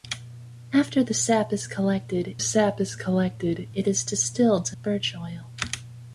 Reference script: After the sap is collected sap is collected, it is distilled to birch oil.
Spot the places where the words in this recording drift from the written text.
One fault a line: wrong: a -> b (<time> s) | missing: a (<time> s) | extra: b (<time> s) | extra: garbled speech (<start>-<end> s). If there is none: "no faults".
no faults